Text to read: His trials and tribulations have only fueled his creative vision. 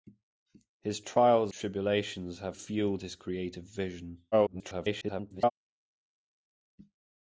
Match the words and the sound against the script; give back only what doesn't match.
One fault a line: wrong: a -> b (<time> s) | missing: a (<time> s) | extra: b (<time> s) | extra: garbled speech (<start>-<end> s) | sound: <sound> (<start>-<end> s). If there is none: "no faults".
missing: and (1.5 s)
missing: only (2.6 s)
extra: garbled speech (4.3-5.5 s)